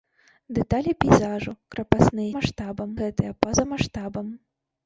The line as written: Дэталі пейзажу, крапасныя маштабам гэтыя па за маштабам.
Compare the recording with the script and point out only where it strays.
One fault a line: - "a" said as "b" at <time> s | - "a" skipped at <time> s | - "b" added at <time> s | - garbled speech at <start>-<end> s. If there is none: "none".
none